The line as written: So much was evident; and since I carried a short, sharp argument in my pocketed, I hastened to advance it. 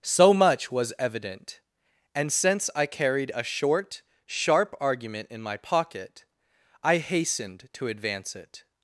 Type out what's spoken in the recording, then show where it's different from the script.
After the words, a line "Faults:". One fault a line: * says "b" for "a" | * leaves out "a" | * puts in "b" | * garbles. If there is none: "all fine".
So much was evident; and since I carried a short, sharp argument in my pocket, I hastened to advance it.
Faults:
* says "pocket" for "pocketed"